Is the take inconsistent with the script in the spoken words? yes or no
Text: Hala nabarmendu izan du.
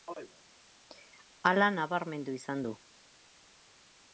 no